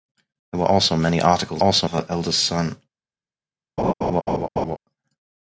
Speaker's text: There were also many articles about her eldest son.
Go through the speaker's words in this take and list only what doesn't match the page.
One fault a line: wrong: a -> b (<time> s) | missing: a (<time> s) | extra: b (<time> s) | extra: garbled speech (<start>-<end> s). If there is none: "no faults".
wrong: about -> also (1.6 s)